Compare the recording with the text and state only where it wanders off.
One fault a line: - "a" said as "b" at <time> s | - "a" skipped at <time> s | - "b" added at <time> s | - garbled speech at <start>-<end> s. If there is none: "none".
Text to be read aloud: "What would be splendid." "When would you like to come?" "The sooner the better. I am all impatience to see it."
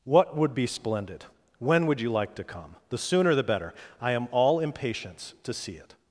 none